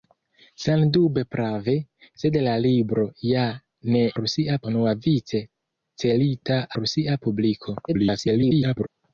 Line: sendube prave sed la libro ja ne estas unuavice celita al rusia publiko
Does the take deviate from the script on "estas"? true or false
true